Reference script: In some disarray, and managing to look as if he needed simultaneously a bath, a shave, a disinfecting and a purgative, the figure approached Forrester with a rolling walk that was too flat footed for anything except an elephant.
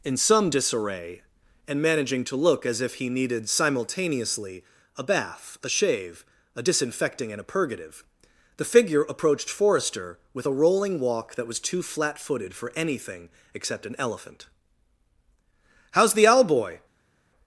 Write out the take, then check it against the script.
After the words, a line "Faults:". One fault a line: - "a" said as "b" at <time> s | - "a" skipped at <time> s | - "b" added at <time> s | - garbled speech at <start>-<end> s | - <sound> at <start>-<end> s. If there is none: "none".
In some disarray, and managing to look as if he needed simultaneously a bath, a shave, a disinfecting and a purgative, the figure approached Forrester with a rolling walk that was too flat footed for anything except an elephant. "How's the Owl boy
Faults:
- "How's the Owl boy" added at 15.9 s